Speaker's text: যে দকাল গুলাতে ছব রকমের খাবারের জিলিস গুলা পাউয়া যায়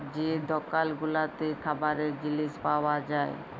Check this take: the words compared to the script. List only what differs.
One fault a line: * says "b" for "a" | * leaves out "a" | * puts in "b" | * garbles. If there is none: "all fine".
* leaves out "ছব রকমের"
* leaves out "গুলা"